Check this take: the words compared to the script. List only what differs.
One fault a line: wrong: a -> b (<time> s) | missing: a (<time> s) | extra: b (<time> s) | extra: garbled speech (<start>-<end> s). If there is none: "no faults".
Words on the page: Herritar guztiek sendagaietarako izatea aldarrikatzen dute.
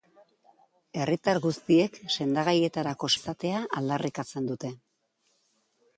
no faults